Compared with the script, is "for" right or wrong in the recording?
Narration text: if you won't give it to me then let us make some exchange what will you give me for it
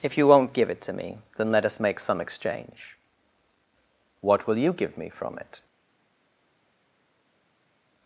wrong